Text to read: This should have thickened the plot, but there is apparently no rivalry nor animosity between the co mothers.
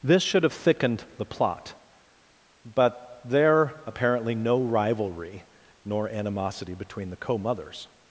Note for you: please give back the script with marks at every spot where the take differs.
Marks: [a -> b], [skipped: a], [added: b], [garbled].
This should have thickened the plot, but there [skipped: is] apparently no rivalry nor animosity between the co mothers.